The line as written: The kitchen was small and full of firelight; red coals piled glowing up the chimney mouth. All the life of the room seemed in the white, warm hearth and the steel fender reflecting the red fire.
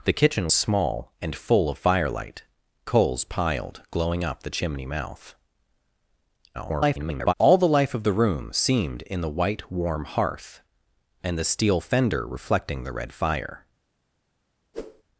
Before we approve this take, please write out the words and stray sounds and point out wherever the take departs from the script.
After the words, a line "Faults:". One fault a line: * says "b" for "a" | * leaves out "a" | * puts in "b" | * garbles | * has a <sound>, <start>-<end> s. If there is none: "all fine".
The kitchen small and full of firelight; coals piled glowing up the chimney mouth. [garbled] All the life of the room seemed in the white, warm hearth and the steel fender reflecting the red fire.
Faults:
* leaves out "was"
* leaves out "red"
* garbles
* has a whoosh, 14.7-15.0 s